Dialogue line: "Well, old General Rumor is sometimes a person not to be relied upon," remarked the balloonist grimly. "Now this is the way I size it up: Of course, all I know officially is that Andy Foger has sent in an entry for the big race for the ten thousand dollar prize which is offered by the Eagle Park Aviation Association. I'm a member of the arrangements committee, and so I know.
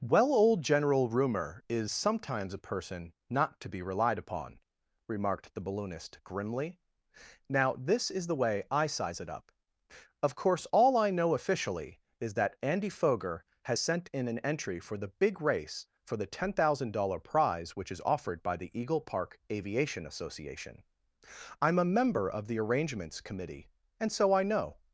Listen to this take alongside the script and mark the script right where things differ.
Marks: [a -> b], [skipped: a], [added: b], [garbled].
"Well, old General Rumor is sometimes a person not to be relied upon," remarked the balloonist grimly. "Now this is the way I size it up: Of course, all I know officially is that Andy Foger has sent in an entry for the big race for the ten thousand dollar prize which is offered by the Eagle Park Aviation Association. I'm a member of the arrangements committee, and so I know.